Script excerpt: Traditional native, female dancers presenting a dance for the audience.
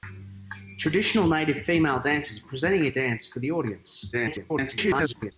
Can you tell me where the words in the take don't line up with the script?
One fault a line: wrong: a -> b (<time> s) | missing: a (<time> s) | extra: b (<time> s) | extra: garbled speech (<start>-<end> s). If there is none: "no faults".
extra: garbled speech (4.1-5.3 s)